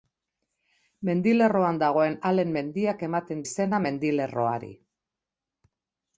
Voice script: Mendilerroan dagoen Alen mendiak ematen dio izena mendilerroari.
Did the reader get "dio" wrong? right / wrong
wrong